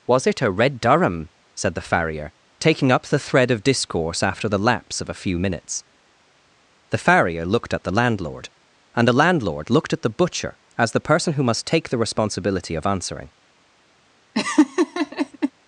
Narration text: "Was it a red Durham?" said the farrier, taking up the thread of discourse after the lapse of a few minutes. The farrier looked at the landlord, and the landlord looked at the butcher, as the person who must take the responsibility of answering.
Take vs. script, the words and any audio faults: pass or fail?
fail